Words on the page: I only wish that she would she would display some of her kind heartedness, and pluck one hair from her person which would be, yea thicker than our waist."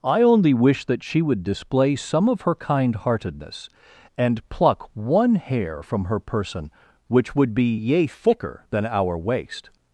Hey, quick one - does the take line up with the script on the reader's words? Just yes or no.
no